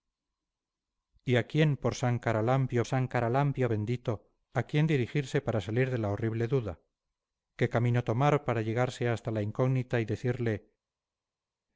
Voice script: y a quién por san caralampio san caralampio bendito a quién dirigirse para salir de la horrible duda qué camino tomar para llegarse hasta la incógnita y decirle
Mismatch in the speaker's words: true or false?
false